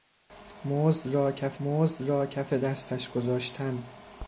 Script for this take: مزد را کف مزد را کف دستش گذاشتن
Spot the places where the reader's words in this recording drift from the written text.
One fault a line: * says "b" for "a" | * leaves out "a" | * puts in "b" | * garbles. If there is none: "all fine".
all fine